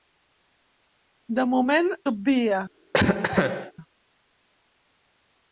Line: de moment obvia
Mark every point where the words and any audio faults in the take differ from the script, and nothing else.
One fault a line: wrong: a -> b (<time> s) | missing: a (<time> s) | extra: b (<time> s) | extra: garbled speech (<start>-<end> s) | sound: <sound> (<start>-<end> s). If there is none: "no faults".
sound: cough (2.9-3.7 s)